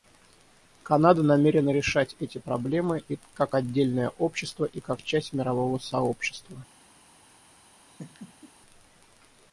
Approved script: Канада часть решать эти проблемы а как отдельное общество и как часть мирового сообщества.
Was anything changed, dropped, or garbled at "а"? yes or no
yes